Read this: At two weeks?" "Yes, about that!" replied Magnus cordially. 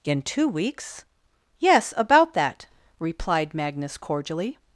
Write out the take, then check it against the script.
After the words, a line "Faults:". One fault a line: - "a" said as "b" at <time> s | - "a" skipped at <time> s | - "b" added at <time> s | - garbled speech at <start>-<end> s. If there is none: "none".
In two weeks?" "Yes, about that!" replied Magnus cordially.
Faults:
- "At" said as "In" at 0.0 s